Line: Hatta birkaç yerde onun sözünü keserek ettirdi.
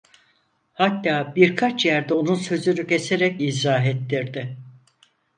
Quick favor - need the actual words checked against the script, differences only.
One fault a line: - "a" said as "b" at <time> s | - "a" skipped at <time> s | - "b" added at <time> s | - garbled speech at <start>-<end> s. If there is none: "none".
- "izah" added at 3.4 s